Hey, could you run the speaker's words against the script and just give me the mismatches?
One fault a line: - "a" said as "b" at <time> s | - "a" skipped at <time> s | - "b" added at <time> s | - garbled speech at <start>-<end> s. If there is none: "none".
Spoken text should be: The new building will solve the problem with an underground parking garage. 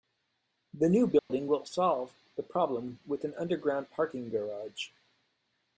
none